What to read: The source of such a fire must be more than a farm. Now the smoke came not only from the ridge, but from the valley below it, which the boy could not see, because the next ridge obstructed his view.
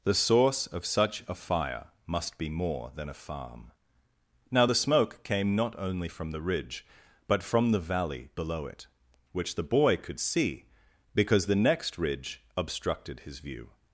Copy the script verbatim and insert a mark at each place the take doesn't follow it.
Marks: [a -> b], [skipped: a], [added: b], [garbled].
The source of such a fire must be more than a farm. Now the smoke came not only from the ridge, but from the valley below it, which the boy could [skipped: not] see, because the next ridge obstructed his view.